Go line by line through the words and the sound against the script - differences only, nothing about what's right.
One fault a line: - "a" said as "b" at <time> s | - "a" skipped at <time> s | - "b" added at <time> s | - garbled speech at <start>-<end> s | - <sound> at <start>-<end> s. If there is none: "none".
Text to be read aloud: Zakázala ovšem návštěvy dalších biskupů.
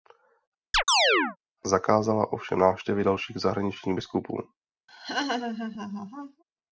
- chirp at 0.7-1.4 s
- "zahraničních" added at 3.4 s
- laugh at 4.9-6.4 s